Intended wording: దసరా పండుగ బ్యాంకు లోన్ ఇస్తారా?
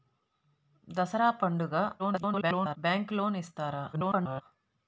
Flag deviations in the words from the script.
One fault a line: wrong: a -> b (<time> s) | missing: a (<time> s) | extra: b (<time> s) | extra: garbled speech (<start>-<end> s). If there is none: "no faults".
extra: garbled speech (2.0-2.8 s)
extra: garbled speech (3.9-4.4 s)